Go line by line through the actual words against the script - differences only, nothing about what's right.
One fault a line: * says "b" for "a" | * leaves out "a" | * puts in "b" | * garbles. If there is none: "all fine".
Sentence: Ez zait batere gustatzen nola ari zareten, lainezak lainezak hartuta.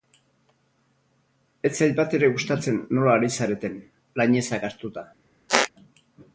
* leaves out "lainezak"